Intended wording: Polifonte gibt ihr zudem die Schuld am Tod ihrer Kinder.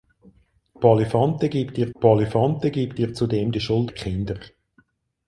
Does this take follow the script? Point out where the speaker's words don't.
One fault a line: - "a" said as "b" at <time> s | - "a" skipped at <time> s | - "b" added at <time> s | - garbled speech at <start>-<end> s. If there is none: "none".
- "polifonte gibt ihr" added at 2.0 s
- "am Tod ihrer" skipped at 3.9 s